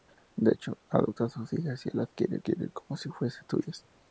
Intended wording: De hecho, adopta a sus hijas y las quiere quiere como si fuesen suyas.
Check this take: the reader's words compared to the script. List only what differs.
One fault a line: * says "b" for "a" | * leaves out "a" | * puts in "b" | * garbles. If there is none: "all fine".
all fine